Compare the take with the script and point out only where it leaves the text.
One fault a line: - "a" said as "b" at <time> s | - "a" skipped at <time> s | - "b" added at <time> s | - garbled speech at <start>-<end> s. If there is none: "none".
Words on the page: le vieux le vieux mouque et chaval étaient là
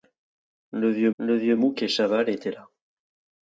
none